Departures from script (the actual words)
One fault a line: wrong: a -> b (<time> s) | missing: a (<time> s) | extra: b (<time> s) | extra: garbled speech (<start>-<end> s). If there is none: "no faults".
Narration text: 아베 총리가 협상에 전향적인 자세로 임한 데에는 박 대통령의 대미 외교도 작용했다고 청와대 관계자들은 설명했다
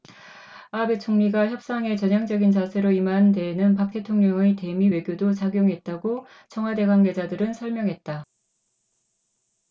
no faults